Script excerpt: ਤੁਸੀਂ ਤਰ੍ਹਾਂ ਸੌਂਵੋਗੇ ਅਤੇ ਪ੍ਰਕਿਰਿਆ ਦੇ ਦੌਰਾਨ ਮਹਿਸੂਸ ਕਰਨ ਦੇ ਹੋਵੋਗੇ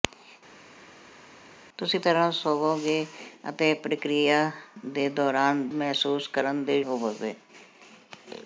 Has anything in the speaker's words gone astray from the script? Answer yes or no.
no